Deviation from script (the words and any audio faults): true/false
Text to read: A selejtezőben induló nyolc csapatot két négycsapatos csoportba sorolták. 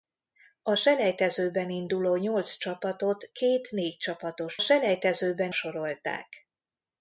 true